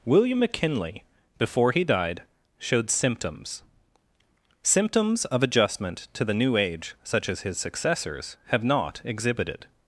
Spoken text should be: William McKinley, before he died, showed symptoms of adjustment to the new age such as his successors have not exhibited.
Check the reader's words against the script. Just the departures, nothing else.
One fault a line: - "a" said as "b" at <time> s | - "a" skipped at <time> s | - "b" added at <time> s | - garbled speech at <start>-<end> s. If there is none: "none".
- "symptoms" added at 4.6 s